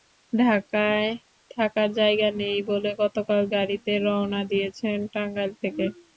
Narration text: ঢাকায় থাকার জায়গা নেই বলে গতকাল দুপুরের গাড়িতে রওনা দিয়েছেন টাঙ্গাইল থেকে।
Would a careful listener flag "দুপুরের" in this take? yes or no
yes